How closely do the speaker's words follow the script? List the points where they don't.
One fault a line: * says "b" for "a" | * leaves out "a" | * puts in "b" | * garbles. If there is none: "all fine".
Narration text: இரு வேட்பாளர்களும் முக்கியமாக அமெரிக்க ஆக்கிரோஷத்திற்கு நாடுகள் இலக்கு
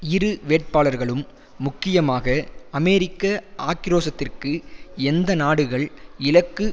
* puts in "எந்த"